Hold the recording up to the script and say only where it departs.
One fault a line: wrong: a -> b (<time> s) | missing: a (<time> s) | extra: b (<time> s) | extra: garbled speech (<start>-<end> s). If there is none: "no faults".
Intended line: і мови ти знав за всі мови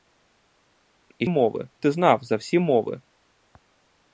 no faults